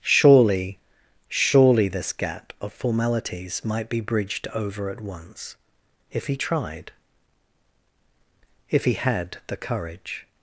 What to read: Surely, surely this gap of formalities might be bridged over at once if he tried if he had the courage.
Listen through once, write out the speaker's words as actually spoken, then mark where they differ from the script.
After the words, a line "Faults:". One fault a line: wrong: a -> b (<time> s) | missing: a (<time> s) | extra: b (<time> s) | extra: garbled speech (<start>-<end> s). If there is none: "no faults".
Surely, surely this gap of formalities might be bridged over at once if he tried if he had the courage.
Faults:
no faults